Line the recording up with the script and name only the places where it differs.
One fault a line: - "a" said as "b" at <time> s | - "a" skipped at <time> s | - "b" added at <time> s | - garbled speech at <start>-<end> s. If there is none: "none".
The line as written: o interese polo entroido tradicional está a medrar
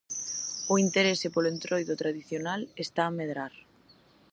none